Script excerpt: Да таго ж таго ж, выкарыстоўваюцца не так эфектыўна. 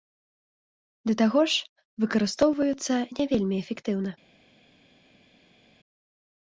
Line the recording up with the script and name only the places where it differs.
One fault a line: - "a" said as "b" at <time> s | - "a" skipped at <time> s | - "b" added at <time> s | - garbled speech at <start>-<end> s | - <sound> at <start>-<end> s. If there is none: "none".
- "таго ж" skipped at 1.7 s
- "так" said as "вельмі" at 3.3 s